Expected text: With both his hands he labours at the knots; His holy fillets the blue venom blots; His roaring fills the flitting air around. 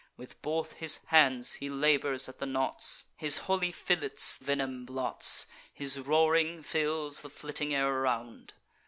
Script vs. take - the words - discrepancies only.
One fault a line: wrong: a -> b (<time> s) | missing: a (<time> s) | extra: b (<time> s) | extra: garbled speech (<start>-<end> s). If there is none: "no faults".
missing: the blue (4.4 s)